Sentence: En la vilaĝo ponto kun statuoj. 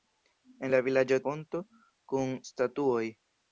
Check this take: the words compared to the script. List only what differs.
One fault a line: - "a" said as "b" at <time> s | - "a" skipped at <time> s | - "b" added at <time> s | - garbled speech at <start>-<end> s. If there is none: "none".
none